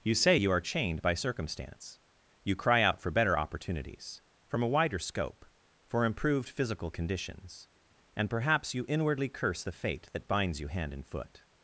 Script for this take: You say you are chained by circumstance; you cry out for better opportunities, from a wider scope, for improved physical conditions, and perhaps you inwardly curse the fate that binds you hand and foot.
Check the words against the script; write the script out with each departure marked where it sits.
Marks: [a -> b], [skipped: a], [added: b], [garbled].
You say you are chained by circumstance; you cry out for better opportunities, from a wider scope, for improved physical conditions, and perhaps you inwardly curse the fate that binds you hand and foot.